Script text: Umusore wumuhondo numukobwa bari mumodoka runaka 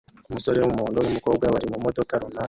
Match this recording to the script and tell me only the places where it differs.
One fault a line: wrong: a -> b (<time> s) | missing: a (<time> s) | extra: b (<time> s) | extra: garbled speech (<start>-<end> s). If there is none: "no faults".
no faults